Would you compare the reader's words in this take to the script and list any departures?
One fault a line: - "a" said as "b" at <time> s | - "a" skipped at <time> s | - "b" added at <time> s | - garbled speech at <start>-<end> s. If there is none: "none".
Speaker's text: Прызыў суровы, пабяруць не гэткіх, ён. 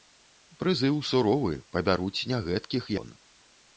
none